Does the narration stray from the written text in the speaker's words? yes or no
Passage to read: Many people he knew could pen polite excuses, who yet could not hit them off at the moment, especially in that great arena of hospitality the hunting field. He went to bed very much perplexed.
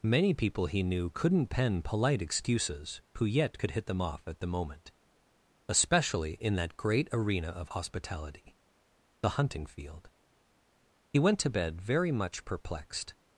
yes